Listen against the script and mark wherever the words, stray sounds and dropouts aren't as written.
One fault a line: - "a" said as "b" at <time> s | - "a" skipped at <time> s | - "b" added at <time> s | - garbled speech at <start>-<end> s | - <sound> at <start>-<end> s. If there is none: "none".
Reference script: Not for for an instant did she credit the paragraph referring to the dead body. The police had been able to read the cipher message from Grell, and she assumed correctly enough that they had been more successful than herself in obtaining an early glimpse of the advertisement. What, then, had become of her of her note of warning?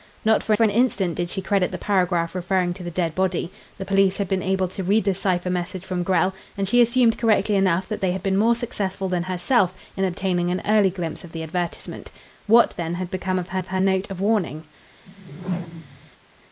- whoosh at 15.1-16.1 s